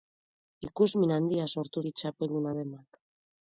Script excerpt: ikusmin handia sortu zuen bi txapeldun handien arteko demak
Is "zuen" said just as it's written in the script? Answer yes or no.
no